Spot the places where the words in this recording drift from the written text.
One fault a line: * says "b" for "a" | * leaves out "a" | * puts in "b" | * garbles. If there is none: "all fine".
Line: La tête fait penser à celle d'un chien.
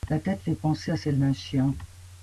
all fine